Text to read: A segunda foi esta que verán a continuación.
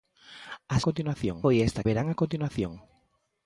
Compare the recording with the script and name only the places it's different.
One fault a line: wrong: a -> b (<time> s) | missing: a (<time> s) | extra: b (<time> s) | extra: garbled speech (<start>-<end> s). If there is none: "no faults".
wrong: segunda -> continuación (0.9 s)
missing: que (1.9 s)